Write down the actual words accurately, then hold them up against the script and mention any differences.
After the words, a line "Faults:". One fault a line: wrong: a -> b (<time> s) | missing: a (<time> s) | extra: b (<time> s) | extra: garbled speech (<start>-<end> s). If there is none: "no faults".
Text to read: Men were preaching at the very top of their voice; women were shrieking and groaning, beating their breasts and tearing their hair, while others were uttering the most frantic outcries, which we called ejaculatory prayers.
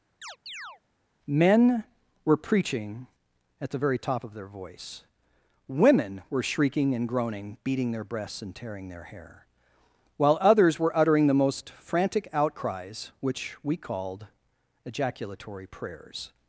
Men were preaching at the very top of their voice; women were shrieking and groaning, beating their breasts and tearing their hair, while others were uttering the most frantic outcries, which we called ejaculatory prayers.
Faults:
no faults